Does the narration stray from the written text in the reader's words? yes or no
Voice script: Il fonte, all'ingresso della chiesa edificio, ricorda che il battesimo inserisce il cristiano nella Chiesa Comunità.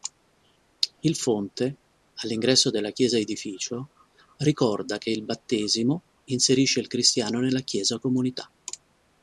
no